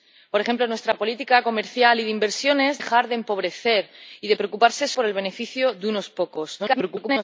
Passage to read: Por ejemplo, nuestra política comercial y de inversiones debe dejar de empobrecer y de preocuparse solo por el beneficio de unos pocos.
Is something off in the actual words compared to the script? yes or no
yes